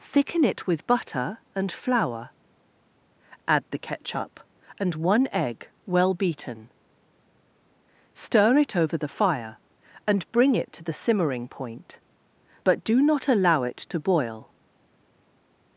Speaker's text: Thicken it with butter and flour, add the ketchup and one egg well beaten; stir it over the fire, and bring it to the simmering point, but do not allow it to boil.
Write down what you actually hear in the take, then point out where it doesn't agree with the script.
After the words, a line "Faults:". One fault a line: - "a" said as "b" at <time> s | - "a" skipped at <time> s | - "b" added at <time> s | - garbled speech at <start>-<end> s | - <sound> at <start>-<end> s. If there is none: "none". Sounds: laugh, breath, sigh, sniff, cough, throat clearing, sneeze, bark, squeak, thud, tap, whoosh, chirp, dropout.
Thicken it with butter and flour, add the ketchup and one egg well beaten; stir it over the fire, and bring it to the simmering point, but do not allow it to boil.
Faults:
none